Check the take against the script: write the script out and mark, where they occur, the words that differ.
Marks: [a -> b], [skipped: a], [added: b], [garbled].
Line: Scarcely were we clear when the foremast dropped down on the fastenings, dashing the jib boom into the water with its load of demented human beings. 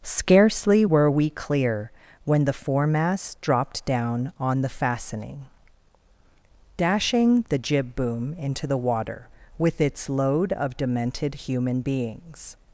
Scarcely were we clear when the foremast dropped down on the [fastenings, -> fastening] dashing the jib boom into the water with its load of demented human beings.